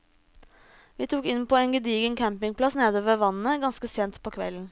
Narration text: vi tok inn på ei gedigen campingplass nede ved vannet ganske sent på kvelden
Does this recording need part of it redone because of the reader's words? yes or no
yes